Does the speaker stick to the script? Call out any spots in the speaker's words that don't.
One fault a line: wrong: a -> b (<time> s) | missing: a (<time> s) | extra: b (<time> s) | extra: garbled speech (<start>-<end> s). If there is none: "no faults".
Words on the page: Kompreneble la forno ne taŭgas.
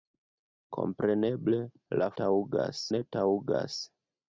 wrong: forno -> taŭgas (2.2 s)